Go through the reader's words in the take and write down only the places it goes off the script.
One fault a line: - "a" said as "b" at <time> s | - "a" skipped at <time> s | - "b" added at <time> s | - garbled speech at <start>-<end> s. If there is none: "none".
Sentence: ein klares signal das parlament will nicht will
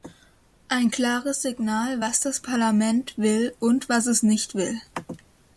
- "was" added at 2.0 s
- "und was es" added at 3.6 s